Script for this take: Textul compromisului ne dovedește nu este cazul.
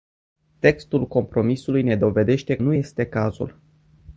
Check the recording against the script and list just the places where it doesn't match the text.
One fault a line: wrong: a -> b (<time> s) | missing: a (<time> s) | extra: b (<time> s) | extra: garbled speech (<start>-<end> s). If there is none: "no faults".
no faults